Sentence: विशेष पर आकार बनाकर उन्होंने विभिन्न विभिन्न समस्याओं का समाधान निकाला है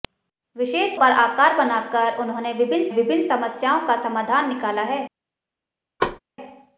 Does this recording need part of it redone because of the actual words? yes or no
no